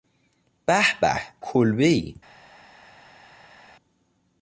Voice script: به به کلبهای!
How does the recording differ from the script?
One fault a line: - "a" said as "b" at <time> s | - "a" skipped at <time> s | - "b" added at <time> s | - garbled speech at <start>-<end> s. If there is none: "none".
none